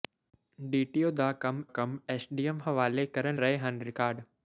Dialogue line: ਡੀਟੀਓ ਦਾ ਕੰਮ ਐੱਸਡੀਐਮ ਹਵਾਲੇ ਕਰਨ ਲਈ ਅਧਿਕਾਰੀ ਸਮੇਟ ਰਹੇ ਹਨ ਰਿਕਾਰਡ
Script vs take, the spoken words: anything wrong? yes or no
yes